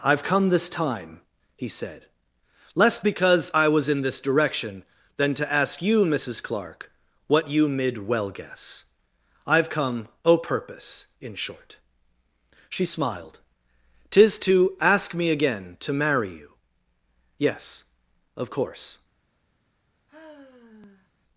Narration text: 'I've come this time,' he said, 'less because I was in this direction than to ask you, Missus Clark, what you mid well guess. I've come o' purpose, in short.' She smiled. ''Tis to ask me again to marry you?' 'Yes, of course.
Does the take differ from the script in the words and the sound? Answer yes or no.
yes